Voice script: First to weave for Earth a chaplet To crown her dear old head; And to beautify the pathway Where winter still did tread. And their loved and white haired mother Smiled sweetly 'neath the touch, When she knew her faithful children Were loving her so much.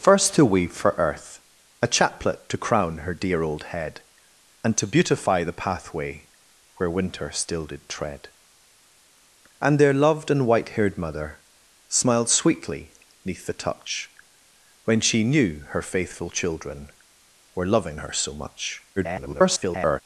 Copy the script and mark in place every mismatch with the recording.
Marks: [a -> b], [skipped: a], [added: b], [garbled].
First to weave for Earth a chaplet To crown her dear old head; And to beautify the pathway Where winter still did tread. And their loved and white haired mother Smiled sweetly 'neath the touch, When she knew her faithful children Were loving her so much. [garbled]